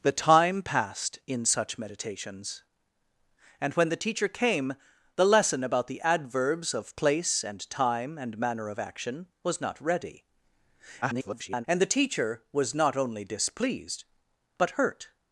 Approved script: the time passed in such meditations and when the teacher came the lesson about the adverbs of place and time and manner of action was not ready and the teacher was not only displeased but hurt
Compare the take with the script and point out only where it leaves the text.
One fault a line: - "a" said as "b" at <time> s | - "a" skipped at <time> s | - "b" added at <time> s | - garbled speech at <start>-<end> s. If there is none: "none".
- garbled speech at 11.0-11.7 s